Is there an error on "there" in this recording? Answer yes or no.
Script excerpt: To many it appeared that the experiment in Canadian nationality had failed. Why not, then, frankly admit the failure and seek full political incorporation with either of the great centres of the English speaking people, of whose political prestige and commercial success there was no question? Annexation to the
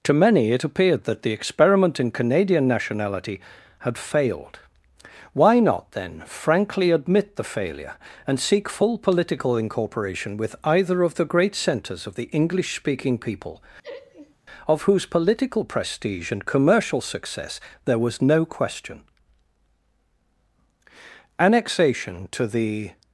no